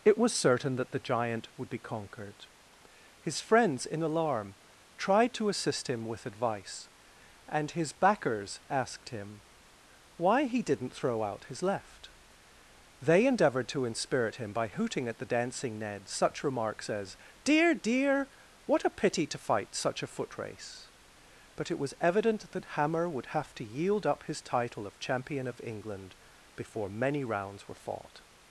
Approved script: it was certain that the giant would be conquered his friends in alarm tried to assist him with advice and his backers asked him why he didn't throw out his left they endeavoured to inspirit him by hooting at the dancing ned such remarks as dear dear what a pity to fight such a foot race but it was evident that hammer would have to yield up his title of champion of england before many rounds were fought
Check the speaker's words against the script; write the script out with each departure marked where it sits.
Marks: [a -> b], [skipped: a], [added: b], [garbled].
it was certain that the giant would be conquered his friends in alarm tried to assist him with advice and his backers asked him why he didn't throw out his left they endeavoured to inspirit him by hooting at the dancing ned such remarks as dear dear what a pity to fight such a foot race but it was evident that hammer would have to yield up his title of champion of england before many rounds were fought